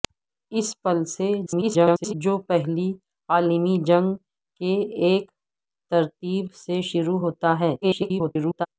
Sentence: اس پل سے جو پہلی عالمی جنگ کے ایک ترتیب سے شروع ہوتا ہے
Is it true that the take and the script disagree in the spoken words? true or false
true